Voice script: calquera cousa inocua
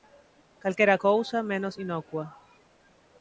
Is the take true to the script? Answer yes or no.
no